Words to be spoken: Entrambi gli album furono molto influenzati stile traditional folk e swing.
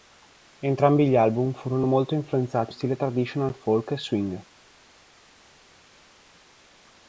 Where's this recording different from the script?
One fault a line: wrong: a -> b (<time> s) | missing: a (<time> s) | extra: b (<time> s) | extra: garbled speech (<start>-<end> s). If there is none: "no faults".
no faults